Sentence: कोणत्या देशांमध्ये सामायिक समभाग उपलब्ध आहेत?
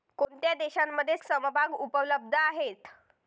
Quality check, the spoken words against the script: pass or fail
fail